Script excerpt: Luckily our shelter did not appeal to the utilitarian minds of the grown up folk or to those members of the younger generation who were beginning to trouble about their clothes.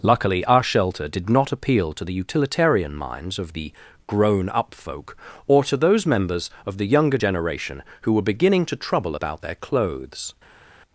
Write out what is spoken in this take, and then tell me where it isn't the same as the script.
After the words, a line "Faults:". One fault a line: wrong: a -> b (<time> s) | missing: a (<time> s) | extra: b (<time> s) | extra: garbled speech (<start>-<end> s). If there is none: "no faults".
Luckily our shelter did not appeal to the utilitarian minds of the grown up folk or to those members of the younger generation who were beginning to trouble about their clothes.
Faults:
no faults